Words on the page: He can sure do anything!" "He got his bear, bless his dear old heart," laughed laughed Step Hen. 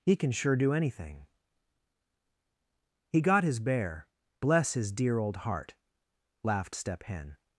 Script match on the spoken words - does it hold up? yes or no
no